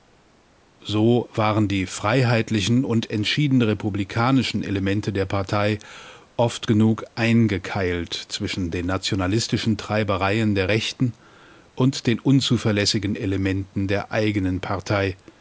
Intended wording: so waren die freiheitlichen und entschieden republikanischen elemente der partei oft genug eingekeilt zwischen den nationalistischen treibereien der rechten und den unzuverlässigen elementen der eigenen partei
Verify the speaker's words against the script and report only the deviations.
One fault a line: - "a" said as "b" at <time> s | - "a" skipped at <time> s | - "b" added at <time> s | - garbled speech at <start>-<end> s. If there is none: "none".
none